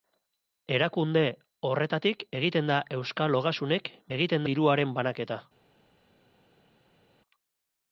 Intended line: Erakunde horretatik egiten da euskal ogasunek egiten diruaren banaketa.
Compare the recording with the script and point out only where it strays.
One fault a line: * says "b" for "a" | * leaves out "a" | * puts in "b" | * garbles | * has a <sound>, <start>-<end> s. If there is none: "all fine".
all fine